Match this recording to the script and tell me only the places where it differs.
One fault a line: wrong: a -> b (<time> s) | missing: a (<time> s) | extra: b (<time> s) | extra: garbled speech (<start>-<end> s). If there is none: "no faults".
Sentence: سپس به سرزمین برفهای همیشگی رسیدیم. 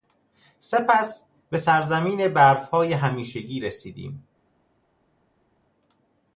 no faults